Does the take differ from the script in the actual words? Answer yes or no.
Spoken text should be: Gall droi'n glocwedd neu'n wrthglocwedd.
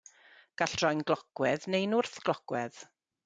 no